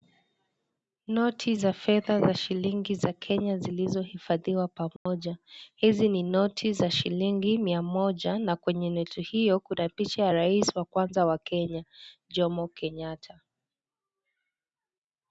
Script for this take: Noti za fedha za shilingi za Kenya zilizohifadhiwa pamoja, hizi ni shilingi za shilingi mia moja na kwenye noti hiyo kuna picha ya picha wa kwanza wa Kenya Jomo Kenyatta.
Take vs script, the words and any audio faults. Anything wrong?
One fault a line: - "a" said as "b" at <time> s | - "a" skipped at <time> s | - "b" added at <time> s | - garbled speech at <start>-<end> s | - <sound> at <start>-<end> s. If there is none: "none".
- dropout at 5.0-5.1 s
- "shilingi" said as "noti" at 6.2 s
- "picha" said as "rais" at 10.3 s